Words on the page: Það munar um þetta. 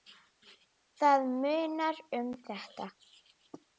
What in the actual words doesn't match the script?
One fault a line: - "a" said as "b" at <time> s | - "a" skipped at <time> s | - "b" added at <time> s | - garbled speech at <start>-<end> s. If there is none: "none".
none